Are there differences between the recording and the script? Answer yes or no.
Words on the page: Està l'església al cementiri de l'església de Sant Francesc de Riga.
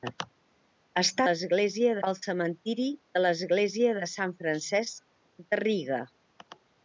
no